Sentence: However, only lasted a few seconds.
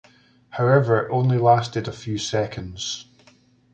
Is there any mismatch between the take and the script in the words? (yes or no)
no